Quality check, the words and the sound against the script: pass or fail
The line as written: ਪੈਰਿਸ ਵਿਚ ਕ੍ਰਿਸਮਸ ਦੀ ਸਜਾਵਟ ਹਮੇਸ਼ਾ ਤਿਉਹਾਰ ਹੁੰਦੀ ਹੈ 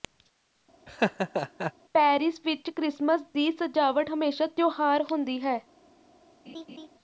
fail